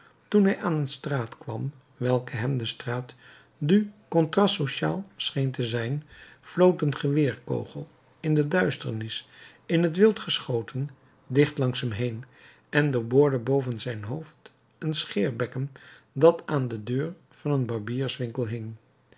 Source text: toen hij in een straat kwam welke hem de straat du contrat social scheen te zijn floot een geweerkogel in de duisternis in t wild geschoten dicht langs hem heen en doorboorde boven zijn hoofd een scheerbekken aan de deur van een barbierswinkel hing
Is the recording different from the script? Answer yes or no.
yes